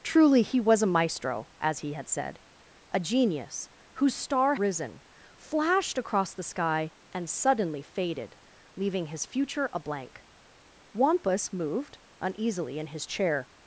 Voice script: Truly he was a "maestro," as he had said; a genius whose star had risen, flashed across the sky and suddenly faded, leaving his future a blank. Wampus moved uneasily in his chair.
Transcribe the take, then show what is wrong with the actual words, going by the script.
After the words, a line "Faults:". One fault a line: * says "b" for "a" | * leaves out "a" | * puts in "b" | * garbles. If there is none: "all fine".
Truly he was a "maestro," as he had said; a genius whose star risen, flashed across the sky and suddenly faded, leaving his future a blank. Wampus moved uneasily in his chair.
Faults:
* leaves out "had"